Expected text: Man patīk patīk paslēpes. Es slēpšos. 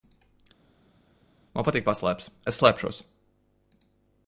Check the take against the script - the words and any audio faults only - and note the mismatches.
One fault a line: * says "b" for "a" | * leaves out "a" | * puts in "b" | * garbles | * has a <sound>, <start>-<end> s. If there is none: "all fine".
* leaves out "patīk"